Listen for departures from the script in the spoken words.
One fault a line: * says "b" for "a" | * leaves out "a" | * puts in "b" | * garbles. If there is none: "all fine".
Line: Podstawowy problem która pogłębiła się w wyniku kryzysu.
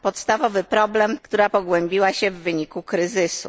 all fine